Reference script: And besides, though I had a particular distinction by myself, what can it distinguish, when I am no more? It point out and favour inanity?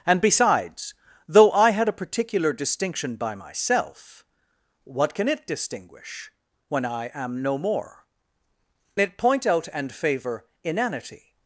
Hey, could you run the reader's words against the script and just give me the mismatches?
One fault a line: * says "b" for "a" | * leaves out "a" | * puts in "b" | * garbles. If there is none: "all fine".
all fine